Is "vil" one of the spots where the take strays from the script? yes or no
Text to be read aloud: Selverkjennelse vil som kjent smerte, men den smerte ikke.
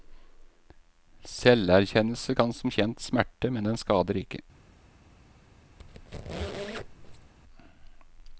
yes